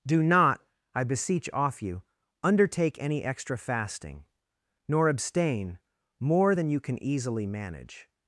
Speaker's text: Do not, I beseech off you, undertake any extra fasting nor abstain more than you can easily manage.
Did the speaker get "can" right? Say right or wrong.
right